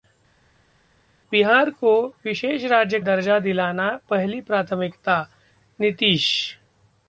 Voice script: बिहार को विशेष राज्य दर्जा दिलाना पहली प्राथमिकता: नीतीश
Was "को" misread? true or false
false